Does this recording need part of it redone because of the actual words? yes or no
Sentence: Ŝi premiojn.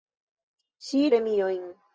no